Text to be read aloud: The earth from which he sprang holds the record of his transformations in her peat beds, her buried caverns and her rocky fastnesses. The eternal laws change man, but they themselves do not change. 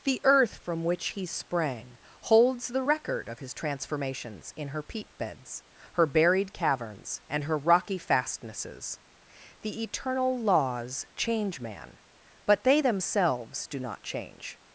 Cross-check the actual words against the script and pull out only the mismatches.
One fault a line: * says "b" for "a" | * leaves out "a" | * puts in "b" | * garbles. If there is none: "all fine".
all fine